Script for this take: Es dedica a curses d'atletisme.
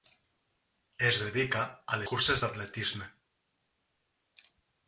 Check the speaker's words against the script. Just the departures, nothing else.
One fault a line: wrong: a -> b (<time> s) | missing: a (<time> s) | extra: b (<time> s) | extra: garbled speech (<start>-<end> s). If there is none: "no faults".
no faults